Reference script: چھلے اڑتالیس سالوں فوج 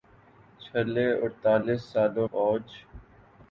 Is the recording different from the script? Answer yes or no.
no